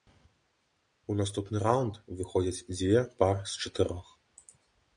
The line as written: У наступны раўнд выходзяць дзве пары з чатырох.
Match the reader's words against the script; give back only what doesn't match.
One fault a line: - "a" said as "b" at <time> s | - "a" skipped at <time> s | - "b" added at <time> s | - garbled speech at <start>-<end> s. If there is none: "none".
none